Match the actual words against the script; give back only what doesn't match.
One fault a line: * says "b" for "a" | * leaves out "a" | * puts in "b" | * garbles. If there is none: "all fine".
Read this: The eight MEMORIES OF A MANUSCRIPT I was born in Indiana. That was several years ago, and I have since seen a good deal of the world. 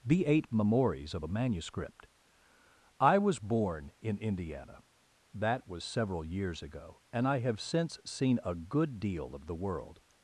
all fine